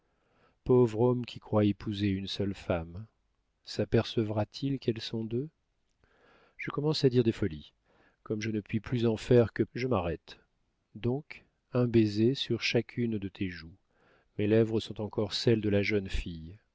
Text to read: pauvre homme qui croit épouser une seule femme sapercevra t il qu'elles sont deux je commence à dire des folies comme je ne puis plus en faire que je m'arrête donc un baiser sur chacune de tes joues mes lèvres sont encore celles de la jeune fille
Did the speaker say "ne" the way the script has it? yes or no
yes